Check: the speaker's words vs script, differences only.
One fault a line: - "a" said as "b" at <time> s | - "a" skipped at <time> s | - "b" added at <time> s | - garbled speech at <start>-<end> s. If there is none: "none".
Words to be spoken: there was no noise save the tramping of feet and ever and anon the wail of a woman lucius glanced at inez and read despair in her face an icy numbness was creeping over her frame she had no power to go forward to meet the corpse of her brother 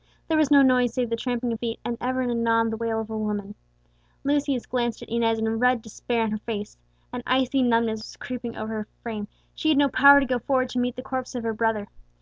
none